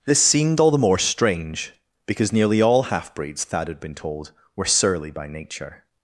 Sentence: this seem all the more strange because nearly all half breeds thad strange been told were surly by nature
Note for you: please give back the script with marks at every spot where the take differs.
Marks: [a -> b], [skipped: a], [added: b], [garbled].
this [seem -> seemed] all the more strange because nearly all half breeds thad [strange -> had] been told were surly by nature